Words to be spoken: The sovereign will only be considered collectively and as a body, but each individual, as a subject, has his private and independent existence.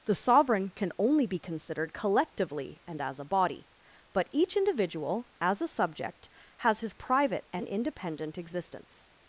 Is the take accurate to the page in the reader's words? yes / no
no